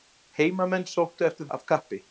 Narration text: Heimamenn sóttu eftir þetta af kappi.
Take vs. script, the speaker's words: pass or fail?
fail